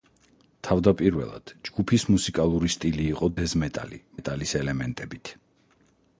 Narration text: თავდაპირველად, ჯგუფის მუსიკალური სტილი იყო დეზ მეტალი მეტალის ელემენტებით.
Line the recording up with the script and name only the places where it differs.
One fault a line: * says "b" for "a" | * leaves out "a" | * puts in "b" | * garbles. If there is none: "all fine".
all fine